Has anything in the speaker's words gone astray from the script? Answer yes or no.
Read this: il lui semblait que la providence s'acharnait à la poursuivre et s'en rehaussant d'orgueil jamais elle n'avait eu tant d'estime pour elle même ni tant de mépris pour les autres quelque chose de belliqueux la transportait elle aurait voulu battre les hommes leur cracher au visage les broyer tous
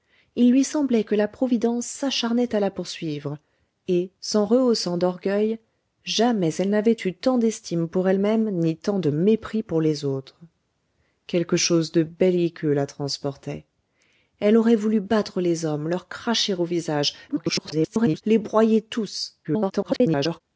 yes